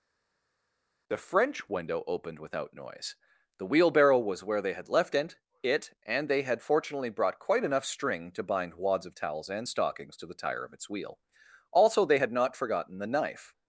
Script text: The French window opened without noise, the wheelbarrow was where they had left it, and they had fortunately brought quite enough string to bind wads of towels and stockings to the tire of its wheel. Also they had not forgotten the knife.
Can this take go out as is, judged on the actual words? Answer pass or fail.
fail